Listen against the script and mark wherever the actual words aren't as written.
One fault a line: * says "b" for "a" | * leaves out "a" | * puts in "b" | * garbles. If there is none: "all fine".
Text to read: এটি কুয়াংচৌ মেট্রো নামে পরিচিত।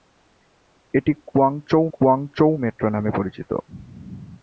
* puts in "কুয়াংচৌ"